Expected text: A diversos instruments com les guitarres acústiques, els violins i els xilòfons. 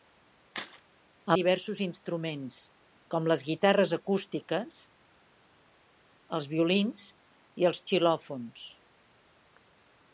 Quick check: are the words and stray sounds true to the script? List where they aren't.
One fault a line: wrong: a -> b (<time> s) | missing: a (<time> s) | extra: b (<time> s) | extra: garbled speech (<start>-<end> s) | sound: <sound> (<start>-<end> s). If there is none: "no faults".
no faults